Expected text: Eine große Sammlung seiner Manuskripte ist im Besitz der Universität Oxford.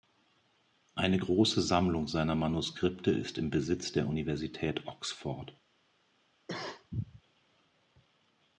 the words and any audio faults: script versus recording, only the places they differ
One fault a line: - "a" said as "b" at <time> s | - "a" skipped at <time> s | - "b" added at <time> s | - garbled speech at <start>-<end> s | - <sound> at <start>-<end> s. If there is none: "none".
- cough at 6.5-7.2 s